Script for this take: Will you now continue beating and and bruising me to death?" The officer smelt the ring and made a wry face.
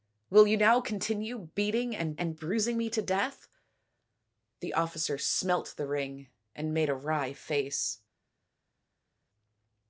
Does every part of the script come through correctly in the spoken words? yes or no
yes